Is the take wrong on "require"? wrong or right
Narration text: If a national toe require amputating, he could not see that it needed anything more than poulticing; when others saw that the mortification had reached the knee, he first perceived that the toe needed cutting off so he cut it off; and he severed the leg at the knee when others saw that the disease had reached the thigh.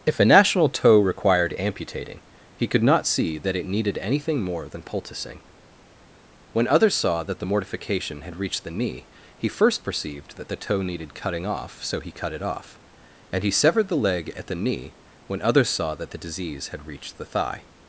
wrong